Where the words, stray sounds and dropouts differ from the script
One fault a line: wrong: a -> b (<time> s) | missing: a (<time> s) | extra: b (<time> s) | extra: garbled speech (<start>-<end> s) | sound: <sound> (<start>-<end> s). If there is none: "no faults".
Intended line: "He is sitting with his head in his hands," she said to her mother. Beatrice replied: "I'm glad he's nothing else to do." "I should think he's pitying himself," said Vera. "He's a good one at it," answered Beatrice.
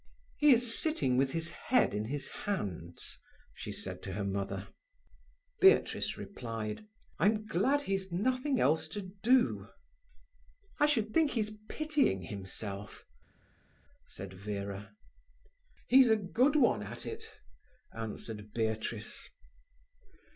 no faults